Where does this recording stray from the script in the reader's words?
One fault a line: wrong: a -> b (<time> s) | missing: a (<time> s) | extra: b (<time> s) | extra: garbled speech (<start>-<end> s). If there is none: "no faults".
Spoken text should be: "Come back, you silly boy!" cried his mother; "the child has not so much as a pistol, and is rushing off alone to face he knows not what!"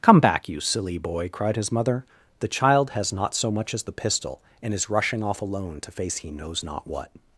wrong: a -> the (3.8 s)